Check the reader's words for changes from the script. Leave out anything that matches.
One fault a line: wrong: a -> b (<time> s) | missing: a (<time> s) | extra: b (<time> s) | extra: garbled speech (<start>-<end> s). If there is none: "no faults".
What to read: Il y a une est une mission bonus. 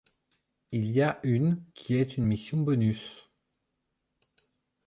extra: qui (1.8 s)